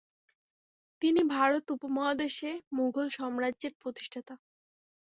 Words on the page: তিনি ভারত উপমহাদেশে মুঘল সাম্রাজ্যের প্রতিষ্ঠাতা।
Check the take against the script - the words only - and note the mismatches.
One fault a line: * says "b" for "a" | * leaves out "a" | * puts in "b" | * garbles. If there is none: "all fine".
all fine